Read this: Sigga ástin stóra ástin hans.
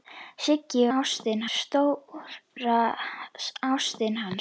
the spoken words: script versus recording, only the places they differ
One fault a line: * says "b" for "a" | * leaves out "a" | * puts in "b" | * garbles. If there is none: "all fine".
all fine